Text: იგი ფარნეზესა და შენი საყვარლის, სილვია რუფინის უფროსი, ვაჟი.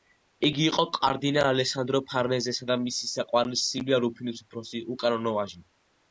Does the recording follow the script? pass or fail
fail